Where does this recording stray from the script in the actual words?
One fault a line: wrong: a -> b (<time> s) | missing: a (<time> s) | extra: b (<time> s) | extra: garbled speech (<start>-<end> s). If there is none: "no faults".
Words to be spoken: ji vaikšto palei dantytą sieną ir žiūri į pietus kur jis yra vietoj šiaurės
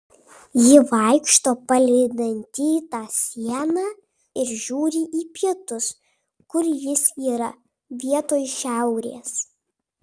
no faults